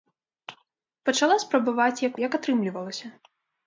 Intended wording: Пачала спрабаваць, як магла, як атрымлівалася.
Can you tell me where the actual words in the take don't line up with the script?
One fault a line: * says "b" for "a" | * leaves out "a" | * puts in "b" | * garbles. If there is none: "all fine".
* leaves out "магла"